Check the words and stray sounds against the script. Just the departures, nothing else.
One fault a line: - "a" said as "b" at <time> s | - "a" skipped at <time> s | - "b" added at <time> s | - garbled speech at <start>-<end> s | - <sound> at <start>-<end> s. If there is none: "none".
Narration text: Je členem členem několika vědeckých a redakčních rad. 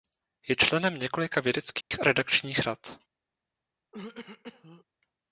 - "členem" skipped at 1.0 s
- dropout at 1.8-1.9 s
- throat clearing at 3.9-4.8 s